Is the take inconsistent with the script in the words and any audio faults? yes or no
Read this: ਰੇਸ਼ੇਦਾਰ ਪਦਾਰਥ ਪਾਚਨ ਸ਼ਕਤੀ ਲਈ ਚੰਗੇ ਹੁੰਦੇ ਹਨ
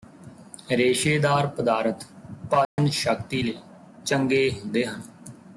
yes